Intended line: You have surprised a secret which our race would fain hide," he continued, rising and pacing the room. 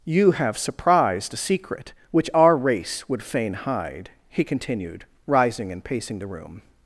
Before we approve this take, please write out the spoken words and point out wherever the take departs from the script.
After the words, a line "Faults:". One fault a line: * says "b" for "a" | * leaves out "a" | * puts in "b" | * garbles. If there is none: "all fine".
You have surprised a secret which our race would fain hide," he continued, rising and pacing the room.
Faults:
all fine